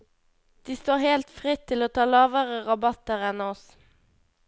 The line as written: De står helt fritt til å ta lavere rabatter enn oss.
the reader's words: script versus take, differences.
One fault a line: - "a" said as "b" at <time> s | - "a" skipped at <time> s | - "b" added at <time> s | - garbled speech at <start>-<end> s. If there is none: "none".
none